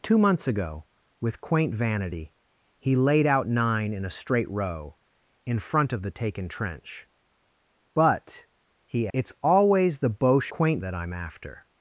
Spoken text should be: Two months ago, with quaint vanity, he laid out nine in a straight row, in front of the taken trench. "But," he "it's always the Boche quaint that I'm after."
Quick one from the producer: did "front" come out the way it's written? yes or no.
yes